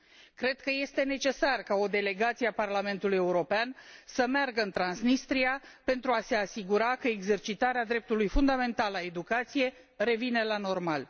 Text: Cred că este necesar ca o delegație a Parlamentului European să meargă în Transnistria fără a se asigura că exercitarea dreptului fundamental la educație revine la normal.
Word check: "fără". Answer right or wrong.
wrong